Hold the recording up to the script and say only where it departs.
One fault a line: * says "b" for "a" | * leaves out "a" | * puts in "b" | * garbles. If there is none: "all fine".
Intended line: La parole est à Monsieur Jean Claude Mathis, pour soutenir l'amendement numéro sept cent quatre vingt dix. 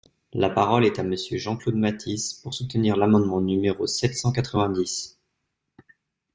all fine